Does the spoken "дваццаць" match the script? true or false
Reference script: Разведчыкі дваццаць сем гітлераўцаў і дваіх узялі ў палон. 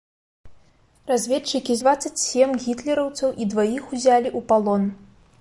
true